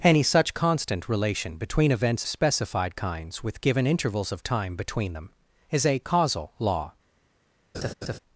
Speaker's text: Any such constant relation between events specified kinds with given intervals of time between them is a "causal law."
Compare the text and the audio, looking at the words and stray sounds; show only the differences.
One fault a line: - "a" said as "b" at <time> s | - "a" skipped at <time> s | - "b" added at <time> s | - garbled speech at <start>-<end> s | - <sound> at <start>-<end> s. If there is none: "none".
- laugh at 7.7-8.2 s